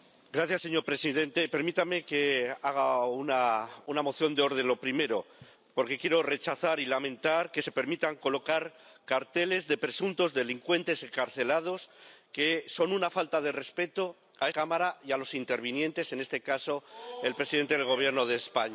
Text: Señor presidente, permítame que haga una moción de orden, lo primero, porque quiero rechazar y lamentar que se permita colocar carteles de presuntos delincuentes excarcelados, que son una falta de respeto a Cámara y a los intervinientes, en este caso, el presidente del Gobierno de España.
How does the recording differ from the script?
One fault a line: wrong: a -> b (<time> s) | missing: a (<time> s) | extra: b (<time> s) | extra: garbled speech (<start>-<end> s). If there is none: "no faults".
no faults